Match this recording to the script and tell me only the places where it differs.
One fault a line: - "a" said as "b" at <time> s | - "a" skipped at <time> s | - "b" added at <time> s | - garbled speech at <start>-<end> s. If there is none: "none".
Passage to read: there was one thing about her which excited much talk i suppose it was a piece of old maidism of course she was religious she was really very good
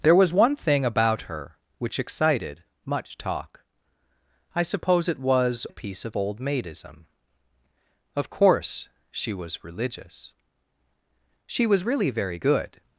none